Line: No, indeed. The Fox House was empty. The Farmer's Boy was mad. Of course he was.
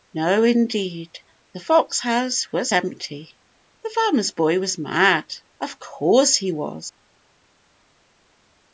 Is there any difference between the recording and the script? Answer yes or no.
no